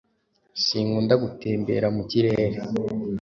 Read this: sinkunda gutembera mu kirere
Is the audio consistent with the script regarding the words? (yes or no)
yes